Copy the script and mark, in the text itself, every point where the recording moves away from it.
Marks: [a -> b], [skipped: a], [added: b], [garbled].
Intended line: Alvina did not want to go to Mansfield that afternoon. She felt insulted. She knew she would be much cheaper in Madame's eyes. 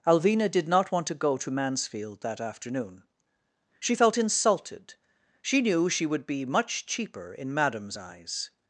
Alvina did not want to go to Mansfield that afternoon. She felt insulted. She knew she would be much cheaper in Madame's eyes.